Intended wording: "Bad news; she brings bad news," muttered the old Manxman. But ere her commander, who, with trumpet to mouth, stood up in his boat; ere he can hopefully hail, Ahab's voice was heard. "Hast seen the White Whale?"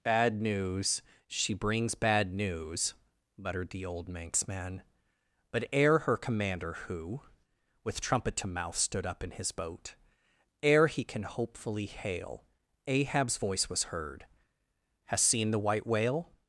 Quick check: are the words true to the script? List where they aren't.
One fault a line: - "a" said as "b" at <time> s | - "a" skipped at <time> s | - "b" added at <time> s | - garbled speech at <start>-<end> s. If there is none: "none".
none